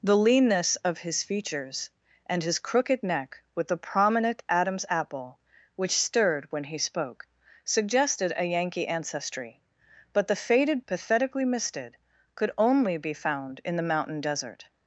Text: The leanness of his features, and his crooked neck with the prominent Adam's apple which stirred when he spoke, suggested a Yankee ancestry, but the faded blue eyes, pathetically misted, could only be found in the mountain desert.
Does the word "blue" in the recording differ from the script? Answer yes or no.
yes